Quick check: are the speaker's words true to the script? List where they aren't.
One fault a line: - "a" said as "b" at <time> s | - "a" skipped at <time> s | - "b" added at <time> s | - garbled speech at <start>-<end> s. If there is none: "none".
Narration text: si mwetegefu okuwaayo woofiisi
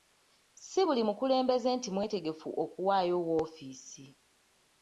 - "buli mukulembeze nti" added at 0.9 s